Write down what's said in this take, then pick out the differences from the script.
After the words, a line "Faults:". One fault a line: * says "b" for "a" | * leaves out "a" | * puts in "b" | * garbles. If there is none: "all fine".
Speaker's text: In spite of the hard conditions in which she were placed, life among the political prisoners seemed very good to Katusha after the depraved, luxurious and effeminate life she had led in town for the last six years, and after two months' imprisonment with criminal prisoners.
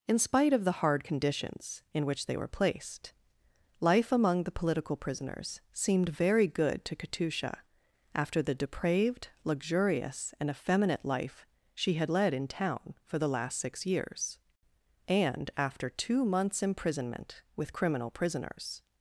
In spite of the hard conditions in which they were placed, life among the political prisoners seemed very good to Katusha after the depraved, luxurious and effeminate life she had led in town for the last six years, and after two months' imprisonment with criminal prisoners.
Faults:
* says "they" for "she"